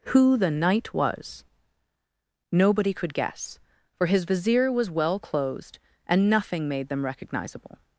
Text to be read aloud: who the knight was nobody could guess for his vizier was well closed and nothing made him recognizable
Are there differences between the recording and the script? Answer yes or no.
yes